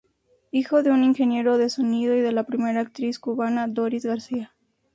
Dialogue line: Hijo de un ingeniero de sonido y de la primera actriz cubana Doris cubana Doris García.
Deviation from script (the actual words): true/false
true